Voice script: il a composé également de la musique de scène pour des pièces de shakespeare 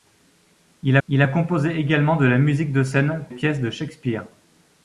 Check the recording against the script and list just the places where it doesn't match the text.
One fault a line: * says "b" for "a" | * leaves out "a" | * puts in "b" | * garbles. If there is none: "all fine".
* puts in "il"
* leaves out "pour des"